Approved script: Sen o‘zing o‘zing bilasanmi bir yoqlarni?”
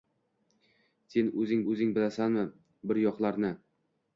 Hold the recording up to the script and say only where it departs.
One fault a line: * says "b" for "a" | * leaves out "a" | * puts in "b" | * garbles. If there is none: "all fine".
all fine